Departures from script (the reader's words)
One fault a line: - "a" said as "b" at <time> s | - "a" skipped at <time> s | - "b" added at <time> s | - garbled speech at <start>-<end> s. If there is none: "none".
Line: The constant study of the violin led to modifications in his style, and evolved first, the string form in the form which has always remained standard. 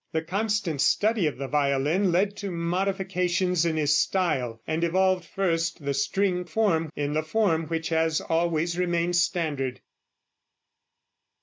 none